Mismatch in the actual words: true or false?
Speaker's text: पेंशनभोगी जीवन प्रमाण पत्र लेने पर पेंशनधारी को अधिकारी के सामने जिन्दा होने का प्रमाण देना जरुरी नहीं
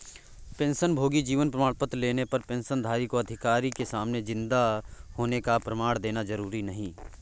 false